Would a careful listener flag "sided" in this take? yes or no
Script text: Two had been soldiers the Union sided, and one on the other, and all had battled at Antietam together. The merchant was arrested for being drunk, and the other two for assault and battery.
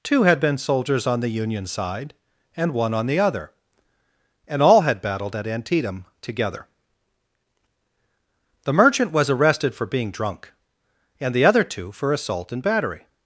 yes